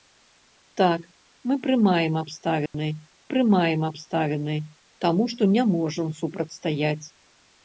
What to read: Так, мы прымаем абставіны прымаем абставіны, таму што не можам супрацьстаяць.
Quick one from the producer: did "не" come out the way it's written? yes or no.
yes